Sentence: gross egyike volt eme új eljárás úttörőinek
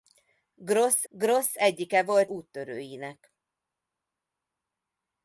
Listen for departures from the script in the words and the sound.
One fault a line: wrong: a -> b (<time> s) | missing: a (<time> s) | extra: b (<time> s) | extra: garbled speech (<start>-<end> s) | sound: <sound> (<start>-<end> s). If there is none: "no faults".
extra: gross (1.1 s)
missing: eme új eljárás (2.3 s)